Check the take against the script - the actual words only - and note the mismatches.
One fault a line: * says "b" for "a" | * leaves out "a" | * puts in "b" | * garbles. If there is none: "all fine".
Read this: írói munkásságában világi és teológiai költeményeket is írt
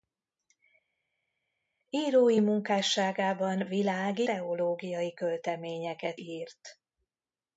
* leaves out "és"
* leaves out "is"